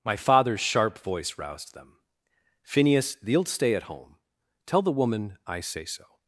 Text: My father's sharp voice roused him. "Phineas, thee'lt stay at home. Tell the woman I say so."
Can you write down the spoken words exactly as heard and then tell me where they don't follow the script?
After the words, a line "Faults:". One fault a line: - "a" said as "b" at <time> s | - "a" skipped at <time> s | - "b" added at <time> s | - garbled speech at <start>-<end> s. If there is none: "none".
My father's sharp voice roused them. "Phineas, thee'lt stay at home. Tell the woman I say so."
Faults:
- "him" said as "them" at 1.8 s